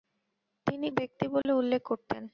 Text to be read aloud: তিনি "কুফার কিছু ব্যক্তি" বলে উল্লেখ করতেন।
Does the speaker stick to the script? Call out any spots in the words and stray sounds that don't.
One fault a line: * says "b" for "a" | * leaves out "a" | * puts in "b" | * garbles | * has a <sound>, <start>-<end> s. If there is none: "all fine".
* leaves out "কুফার কিছু"
* has a dropout, 1.4-1.5 s